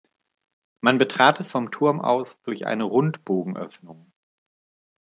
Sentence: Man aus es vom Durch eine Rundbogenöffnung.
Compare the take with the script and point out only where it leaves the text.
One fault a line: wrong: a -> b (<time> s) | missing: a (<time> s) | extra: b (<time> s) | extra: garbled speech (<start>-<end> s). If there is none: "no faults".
wrong: aus -> betrat (1.0 s)
extra: Turm aus (1.7 s)